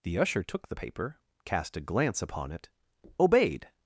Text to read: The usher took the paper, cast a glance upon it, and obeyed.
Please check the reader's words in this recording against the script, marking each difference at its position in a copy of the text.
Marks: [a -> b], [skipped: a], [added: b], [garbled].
The usher took the paper, cast a glance upon it, [skipped: and] obeyed.